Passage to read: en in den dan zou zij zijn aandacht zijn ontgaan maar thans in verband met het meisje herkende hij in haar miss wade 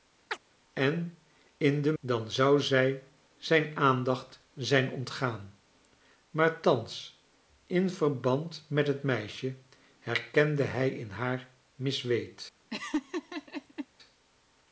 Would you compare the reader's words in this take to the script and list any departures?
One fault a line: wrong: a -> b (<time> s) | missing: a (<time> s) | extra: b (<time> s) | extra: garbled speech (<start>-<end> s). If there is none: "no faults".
no faults